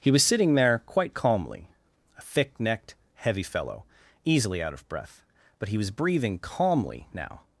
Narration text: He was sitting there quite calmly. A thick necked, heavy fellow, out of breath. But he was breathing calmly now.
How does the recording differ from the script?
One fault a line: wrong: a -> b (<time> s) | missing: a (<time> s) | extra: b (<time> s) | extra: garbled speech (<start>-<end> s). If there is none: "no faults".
extra: easily (4.2 s)